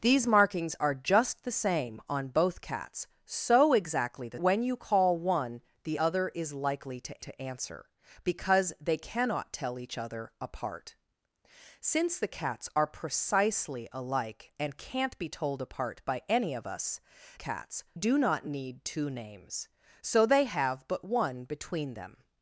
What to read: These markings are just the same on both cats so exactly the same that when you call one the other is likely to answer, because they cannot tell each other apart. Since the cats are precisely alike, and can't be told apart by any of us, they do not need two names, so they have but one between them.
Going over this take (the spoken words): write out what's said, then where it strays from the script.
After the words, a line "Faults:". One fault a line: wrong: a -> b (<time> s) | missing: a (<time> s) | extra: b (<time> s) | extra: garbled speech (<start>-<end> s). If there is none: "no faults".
These markings are just the same on both cats so exactly the when you call one the other is likely to to answer, because they cannot tell each other apart. Since the cats are precisely alike, and can't be told apart by any of us, cats do not need two names, so they have but one between them.
Faults:
missing: same that (4.4 s)
extra: to (7.2 s)
wrong: they -> cats (17.4 s)